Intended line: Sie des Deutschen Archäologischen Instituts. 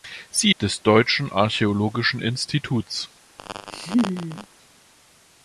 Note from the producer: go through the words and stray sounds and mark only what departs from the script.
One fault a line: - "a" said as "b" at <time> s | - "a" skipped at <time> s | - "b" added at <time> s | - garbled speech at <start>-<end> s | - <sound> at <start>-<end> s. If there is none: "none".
- laugh at 3.4-4.5 s